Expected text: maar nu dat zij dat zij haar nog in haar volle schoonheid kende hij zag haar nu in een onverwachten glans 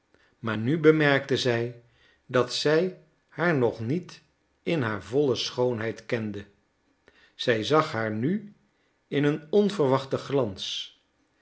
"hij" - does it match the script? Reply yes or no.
no